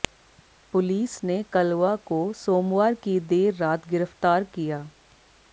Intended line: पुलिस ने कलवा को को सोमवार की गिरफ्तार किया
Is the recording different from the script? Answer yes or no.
yes